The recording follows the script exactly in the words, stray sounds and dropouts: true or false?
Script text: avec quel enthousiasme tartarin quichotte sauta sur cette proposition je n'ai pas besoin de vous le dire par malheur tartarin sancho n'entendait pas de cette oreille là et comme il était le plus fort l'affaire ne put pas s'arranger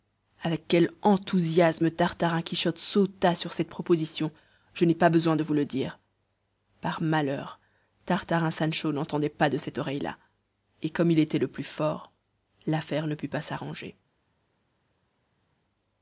true